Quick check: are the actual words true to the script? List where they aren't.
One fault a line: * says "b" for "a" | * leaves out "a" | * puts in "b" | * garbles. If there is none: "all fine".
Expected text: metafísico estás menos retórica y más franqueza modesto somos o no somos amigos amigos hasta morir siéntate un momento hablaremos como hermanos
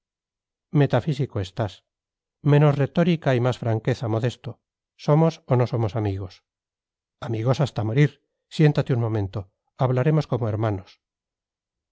all fine